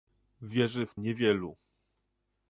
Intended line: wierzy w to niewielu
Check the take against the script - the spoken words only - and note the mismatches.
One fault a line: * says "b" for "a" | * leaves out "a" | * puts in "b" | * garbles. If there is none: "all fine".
* leaves out "to"